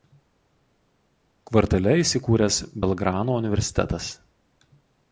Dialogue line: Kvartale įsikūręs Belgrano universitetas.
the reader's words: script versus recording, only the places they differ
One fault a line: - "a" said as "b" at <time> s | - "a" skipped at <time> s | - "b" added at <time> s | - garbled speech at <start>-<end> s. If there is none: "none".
none